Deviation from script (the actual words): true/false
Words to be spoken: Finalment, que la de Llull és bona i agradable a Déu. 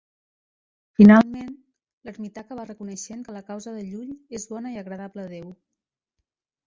true